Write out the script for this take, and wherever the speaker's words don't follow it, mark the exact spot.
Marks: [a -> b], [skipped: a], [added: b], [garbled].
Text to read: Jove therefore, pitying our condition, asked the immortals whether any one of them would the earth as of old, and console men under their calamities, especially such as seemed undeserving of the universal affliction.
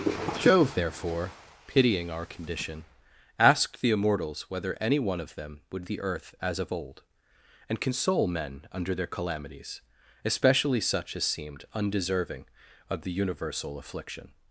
Jove therefore, pitying our condition, asked the immortals whether any one of them would the earth as of old, and console men under their calamities, especially such as seemed undeserving of the universal affliction.